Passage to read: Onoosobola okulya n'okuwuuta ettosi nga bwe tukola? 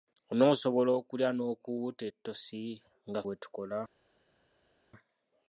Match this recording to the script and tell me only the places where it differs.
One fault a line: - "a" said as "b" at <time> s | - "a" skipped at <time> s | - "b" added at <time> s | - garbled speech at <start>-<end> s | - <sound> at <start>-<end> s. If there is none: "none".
none